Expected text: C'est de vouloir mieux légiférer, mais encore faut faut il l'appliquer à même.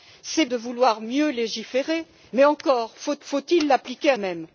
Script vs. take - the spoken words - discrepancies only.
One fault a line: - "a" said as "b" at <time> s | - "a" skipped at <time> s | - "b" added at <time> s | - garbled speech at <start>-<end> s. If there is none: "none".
none